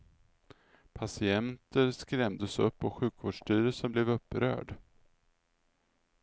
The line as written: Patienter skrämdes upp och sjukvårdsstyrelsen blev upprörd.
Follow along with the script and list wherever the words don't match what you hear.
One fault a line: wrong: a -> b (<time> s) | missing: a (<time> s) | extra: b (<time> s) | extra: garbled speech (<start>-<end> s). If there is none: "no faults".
no faults